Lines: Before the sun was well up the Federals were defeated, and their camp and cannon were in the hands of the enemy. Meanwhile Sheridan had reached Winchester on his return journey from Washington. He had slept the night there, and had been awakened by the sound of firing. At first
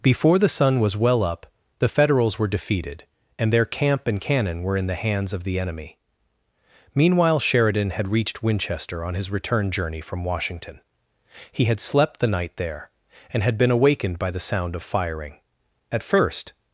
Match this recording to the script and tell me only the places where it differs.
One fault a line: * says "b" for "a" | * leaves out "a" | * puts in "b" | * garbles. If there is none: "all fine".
all fine